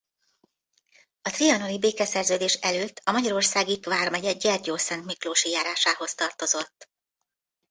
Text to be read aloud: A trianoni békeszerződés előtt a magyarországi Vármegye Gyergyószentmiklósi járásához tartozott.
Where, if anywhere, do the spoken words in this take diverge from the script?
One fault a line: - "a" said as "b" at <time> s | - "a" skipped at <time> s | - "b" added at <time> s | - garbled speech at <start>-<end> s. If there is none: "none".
none